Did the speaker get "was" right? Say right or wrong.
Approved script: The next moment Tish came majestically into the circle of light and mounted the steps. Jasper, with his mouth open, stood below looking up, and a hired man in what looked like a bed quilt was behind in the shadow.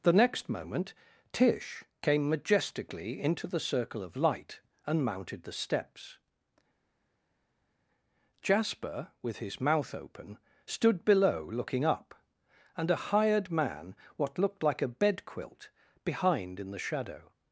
wrong